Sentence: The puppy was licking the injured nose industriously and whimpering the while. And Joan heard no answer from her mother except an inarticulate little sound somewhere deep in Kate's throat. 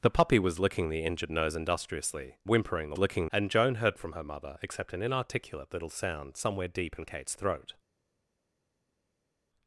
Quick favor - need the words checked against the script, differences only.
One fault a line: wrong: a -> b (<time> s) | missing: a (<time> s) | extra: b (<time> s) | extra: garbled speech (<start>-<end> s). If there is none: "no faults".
missing: and (2.4 s)
wrong: while -> licking (3.0 s)
missing: no answer (4.0 s)